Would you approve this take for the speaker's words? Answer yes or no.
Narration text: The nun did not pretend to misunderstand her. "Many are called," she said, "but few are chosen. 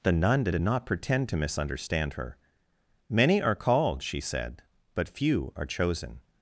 no